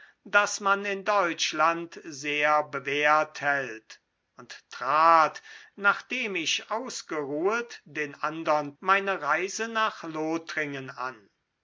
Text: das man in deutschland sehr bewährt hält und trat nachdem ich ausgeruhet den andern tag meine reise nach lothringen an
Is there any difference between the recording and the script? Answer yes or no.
yes